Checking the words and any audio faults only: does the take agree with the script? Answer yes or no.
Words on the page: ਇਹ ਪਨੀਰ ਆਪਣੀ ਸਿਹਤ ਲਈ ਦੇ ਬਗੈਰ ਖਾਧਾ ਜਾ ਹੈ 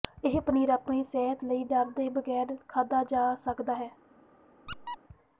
no